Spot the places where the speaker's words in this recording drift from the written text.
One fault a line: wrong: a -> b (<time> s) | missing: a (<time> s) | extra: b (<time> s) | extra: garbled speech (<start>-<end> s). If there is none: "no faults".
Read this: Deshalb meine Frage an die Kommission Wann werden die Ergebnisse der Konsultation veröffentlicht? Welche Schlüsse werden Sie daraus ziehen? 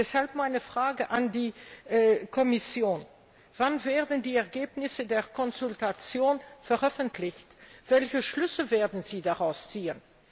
no faults